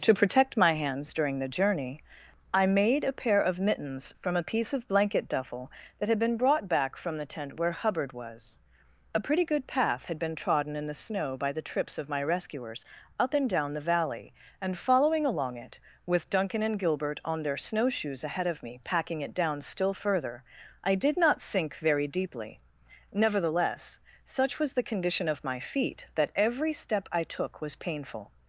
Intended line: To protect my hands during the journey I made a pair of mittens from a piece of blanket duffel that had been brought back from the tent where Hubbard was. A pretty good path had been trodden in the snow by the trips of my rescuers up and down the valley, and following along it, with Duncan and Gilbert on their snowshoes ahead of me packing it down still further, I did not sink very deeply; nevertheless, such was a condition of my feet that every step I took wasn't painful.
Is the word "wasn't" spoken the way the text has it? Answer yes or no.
no